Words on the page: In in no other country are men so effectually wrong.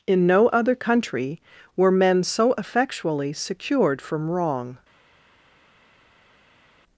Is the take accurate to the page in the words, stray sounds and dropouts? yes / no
no